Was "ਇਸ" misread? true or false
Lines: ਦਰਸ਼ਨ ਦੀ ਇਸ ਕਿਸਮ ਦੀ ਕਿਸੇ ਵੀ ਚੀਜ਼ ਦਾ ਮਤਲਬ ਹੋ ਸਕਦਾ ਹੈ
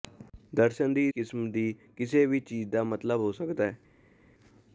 true